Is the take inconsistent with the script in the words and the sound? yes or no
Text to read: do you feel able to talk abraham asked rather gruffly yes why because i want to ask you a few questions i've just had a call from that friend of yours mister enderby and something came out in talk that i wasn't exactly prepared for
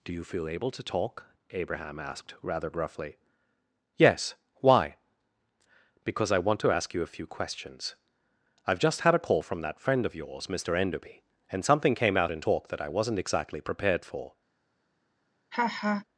yes